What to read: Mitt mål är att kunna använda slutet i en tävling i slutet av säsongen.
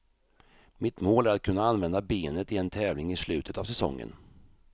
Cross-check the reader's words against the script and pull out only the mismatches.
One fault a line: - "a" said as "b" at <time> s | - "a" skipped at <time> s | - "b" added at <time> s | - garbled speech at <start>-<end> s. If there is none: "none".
- "slutet" said as "benet" at 2.0 s